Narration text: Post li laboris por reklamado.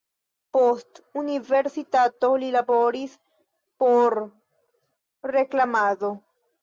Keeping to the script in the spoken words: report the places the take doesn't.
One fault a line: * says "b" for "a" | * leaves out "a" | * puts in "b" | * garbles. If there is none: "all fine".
* puts in "universitato"